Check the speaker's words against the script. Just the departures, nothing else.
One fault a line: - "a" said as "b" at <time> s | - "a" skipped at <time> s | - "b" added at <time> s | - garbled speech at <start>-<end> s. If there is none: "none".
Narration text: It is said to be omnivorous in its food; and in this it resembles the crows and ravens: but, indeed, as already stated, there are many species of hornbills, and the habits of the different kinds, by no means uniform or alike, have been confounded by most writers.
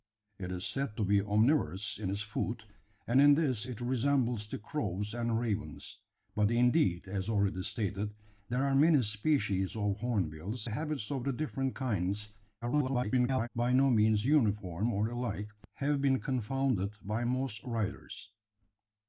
- "and" skipped at 10.7 s
- garbled speech at 12.6-13.5 s